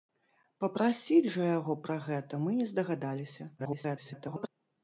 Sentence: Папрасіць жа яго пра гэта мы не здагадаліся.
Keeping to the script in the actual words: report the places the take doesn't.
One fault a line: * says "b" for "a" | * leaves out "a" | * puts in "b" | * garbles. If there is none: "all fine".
* garbles